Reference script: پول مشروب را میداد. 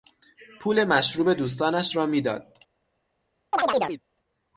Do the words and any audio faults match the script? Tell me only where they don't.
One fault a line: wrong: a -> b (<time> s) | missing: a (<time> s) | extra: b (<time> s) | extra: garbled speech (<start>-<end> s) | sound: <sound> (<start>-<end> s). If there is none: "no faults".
extra: دوستانش (1.3 s)
sound: chirp (3.5-4.0 s)